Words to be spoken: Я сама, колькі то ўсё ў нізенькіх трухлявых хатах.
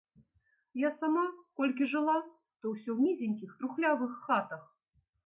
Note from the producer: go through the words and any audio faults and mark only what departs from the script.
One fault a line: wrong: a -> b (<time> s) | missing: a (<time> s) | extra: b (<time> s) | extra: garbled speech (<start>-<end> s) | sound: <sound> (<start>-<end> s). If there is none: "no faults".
extra: жыла (1.9 s)